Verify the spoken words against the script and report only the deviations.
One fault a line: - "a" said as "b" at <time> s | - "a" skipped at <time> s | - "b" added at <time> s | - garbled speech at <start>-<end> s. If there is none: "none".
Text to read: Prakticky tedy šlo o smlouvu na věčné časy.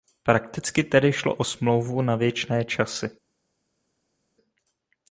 none